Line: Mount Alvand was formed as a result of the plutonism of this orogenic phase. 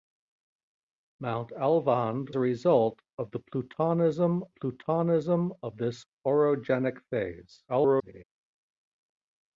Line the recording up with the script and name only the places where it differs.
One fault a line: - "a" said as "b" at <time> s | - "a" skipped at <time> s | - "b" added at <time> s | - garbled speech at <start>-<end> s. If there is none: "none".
- "was formed as" skipped at 2.4 s
- "plutonism" added at 4.5 s
- garbled speech at 7.7-8.2 s